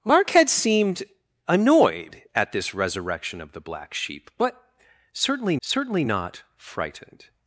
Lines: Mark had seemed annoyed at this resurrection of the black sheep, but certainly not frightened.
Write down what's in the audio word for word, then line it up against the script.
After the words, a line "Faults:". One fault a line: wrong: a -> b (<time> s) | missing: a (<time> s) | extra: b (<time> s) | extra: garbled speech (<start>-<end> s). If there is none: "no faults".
Mark had seemed annoyed at this resurrection of the black sheep, but certainly certainly not frightened.
Faults:
extra: certainly (5.6 s)